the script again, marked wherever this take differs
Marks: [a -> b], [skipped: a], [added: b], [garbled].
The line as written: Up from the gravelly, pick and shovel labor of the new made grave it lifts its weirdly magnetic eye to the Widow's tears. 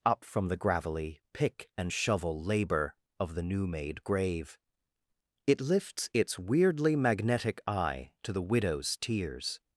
Up from the gravelly, pick and shovel labor of the new made grave it lifts its weirdly magnetic eye to the Widow's tears.